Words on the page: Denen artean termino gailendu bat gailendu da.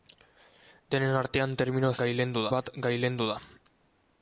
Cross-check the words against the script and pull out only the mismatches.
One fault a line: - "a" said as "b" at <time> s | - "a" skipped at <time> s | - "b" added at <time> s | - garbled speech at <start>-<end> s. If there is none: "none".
none